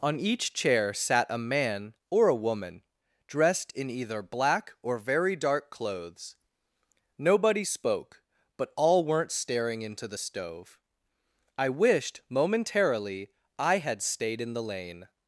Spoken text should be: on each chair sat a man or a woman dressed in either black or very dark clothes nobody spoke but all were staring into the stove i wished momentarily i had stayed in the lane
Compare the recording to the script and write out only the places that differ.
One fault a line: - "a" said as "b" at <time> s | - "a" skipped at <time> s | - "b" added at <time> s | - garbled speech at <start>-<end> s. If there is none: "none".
- "were" said as "weren't" at 9.1 s